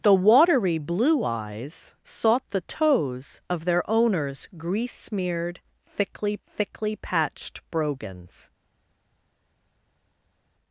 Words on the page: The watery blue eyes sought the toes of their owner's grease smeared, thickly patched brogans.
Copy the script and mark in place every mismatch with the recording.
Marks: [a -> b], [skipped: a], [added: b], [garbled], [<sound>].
The watery blue eyes sought the toes of their owner's grease smeared, thickly [added: thickly] patched brogans.